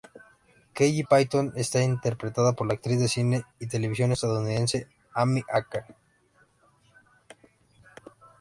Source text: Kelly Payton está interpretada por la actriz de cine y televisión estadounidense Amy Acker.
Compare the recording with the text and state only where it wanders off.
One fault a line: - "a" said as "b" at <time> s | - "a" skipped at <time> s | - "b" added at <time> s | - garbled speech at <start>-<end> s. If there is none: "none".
none